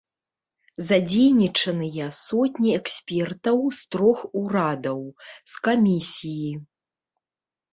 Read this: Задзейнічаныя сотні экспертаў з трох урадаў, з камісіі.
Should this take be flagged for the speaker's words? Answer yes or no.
no